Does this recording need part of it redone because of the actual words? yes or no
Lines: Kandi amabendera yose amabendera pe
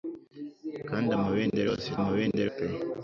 no